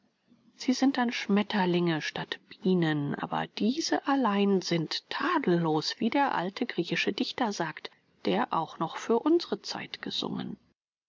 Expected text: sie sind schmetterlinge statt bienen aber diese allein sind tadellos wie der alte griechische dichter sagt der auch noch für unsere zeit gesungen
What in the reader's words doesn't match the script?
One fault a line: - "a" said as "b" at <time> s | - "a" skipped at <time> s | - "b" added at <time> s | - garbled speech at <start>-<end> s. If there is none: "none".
- "dann" added at 1.0 s